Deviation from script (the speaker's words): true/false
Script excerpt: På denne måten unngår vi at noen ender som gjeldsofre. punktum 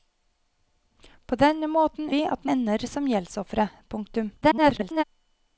true